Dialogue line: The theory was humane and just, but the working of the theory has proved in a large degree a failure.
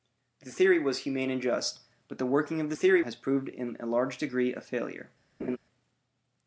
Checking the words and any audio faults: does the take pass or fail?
fail